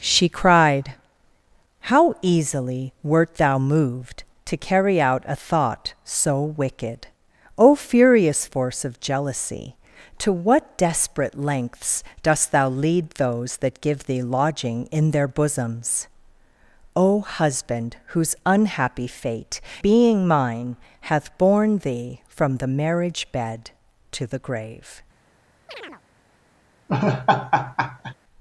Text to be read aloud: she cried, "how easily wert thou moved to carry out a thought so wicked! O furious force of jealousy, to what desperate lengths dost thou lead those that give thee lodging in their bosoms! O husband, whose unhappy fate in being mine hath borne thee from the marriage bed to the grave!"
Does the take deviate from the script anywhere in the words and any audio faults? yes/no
yes